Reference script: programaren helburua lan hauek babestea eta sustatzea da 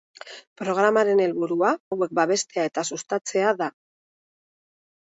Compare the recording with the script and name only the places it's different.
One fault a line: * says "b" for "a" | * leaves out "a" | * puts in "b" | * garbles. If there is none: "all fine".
* leaves out "lan"